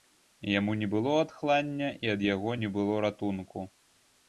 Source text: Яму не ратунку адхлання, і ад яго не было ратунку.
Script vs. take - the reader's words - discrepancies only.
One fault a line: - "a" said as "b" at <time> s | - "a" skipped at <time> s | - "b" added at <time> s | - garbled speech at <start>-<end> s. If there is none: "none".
- "ратунку" said as "было" at 0.9 s